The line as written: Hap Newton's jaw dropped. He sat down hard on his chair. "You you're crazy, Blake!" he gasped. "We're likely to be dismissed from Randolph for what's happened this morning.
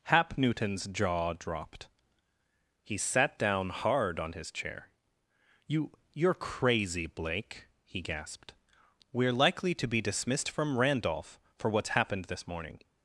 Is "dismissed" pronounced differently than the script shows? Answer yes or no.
no